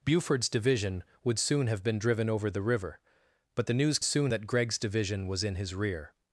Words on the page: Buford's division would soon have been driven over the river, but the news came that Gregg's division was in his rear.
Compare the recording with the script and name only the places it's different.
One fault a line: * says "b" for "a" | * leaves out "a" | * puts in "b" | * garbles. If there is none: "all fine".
* says "soon" for "came"